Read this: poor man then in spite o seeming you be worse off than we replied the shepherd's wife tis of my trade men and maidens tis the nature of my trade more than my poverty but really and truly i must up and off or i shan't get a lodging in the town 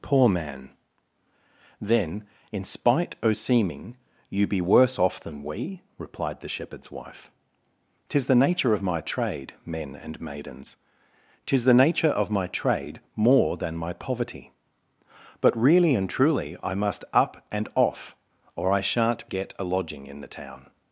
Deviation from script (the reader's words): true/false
true